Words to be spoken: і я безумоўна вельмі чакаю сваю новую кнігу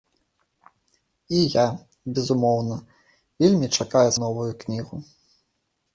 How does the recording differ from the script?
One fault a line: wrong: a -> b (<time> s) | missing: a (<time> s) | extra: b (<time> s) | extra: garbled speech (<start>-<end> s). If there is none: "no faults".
missing: сваю (4.1 s)